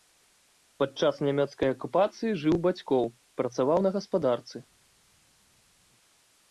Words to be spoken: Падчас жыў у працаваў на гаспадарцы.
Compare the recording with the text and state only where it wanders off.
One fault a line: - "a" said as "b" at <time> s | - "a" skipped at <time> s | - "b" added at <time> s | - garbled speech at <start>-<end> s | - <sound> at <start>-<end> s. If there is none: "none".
- "нямецкай акупацыі" added at 1.3 s
- "бацькоў" added at 2.6 s